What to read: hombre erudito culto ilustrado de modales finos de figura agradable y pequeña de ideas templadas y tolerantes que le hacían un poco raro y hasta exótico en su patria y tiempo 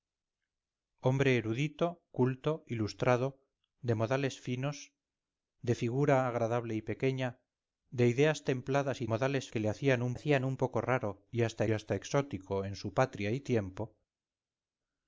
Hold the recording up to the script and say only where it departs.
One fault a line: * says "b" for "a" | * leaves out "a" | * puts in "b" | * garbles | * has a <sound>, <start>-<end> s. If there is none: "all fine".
* says "modales" for "tolerantes"
* puts in "hacían un"
* puts in "hasta"